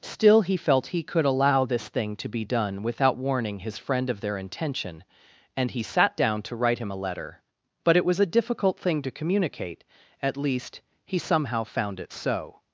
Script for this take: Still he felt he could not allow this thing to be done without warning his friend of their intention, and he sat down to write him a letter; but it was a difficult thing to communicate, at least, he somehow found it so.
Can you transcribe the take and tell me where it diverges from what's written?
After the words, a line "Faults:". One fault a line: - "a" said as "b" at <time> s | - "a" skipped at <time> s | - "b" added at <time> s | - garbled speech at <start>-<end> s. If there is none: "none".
Still he felt he could allow this thing to be done without warning his friend of their intention, and he sat down to write him a letter; but it was a difficult thing to communicate, at least, he somehow found it so.
Faults:
- "not" skipped at 1.2 s